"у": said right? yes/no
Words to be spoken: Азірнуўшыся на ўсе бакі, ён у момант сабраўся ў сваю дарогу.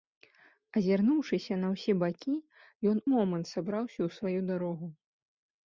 no